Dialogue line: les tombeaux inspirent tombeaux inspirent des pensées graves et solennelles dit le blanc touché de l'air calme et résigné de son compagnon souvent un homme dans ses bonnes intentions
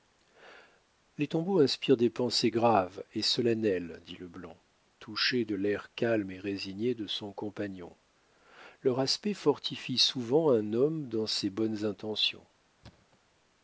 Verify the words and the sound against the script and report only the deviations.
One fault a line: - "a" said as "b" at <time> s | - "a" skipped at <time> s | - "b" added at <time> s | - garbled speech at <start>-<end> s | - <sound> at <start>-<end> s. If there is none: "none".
- "tombeaux inspirent" skipped at 1.9 s
- "leur aspect fortifie" added at 8.8 s
- thud at 12.8-13.2 s